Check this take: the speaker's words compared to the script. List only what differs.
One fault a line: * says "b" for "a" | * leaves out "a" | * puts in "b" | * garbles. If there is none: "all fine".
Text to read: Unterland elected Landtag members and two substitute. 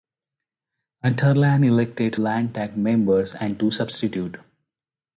all fine